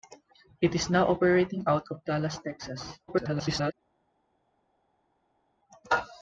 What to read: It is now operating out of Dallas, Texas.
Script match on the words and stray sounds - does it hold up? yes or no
no